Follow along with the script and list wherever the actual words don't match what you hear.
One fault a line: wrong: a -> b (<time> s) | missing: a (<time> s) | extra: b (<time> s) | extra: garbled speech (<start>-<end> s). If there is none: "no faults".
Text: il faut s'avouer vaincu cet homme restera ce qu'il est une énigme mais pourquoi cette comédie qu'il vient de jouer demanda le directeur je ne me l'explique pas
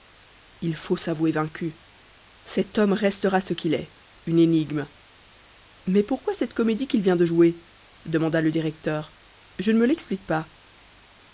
no faults